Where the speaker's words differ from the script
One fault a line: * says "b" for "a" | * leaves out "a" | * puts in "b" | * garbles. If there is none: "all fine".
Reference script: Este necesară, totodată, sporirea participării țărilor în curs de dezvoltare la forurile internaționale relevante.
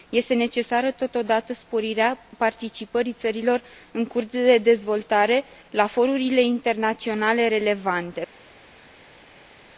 all fine